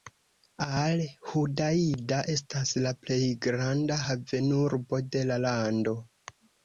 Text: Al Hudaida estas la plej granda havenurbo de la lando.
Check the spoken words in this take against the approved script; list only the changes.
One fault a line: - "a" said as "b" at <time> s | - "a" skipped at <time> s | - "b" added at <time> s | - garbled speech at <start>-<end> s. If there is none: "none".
none